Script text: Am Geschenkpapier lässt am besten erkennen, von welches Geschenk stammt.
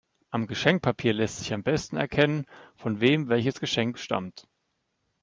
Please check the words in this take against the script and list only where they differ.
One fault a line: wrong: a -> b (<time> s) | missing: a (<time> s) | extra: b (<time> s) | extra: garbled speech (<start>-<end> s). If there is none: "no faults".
extra: sich (1.4 s)
extra: wem (3.0 s)